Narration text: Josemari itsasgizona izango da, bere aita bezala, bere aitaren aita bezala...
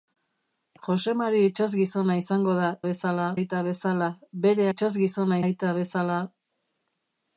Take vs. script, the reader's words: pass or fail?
fail